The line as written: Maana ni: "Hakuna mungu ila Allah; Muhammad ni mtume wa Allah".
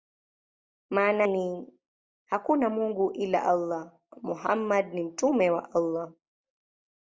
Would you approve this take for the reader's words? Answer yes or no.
yes